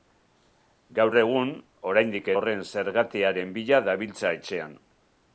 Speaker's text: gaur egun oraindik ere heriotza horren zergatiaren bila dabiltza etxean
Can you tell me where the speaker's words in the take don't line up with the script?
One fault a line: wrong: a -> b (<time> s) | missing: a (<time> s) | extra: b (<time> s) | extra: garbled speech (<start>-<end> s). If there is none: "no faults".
missing: ere heriotza (2.3 s)